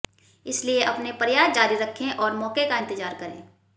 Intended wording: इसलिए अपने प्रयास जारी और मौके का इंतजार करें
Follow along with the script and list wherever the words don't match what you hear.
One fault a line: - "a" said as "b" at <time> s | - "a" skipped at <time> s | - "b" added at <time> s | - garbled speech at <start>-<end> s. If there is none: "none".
- "रखें" added at 1.8 s